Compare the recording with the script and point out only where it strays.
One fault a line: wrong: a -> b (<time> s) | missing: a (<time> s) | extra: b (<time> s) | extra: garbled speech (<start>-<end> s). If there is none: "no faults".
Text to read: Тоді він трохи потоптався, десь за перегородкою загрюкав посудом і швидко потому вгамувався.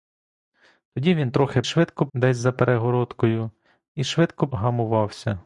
wrong: потоптався -> швидко (1.6 s)
missing: загрюкав посудом (3.5 s)
missing: потому (4.5 s)